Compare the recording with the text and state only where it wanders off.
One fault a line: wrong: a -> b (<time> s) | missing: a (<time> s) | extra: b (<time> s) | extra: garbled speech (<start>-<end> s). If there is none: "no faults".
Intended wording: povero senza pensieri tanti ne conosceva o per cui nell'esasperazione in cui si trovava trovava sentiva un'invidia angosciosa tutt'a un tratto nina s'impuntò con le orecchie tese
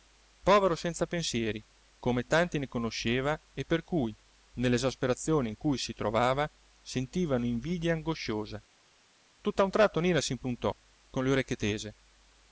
extra: come (2.0 s)
wrong: o -> e (3.5 s)
missing: trovava (6.5 s)